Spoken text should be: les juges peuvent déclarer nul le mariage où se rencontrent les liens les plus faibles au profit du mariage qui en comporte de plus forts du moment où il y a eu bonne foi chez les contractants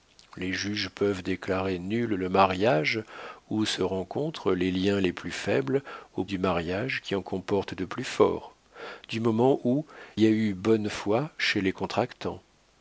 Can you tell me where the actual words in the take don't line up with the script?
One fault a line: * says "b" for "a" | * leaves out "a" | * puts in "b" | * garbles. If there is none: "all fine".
* leaves out "profit"
* leaves out "il"